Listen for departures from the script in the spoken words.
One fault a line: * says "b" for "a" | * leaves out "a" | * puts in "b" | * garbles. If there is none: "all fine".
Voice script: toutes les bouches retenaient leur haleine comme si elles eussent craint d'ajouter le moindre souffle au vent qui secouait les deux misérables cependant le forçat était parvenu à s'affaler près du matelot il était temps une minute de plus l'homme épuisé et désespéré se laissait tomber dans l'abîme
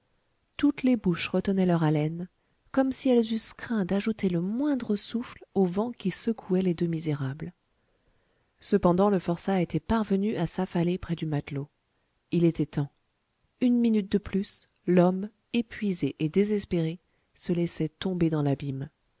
all fine